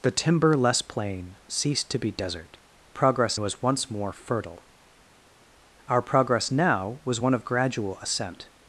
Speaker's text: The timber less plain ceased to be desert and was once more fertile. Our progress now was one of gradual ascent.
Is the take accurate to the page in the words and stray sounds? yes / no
no